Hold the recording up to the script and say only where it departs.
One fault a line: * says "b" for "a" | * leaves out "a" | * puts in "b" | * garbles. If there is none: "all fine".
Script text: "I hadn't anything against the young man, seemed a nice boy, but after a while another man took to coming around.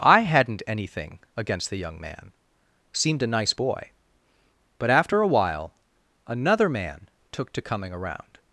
all fine